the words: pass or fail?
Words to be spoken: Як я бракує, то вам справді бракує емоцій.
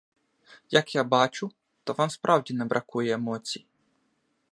fail